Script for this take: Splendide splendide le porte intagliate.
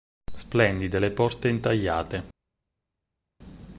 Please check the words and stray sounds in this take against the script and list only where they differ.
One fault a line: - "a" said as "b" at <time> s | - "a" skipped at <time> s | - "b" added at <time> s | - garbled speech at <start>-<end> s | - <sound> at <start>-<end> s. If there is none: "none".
- "splendide" skipped at 1.0 s